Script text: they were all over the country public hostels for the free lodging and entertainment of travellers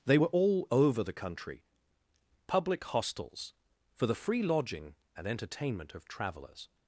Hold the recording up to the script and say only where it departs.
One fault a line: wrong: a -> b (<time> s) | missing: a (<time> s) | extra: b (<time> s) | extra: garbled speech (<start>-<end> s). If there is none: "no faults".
no faults